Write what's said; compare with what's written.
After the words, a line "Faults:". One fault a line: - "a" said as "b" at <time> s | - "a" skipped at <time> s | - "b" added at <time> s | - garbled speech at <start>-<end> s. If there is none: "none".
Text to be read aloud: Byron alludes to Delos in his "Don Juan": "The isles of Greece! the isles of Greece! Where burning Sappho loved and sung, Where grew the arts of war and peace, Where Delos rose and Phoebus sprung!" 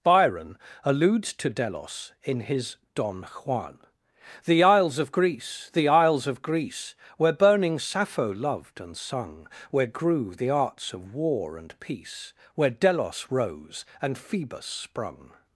Byron alludes to Delos in his "Don Juan": "The isles of Greece! the isles of Greece! Where burning Sappho loved and sung, Where grew the arts of war and peace, Where Delos rose and Phoebus sprung!"
Faults:
none